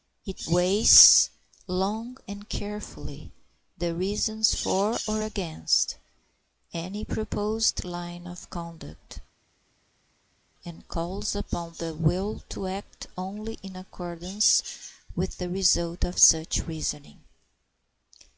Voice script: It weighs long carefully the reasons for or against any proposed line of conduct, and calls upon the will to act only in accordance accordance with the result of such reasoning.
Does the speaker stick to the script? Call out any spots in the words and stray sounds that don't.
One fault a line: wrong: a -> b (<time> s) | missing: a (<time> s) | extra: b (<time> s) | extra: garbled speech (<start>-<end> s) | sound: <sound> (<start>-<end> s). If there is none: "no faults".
extra: and (2.3 s)
missing: accordance (14.9 s)